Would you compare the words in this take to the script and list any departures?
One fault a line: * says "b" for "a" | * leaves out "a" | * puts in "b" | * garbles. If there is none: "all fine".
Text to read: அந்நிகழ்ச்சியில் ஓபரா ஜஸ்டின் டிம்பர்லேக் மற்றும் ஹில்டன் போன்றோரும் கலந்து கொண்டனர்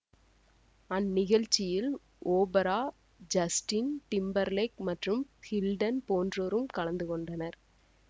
all fine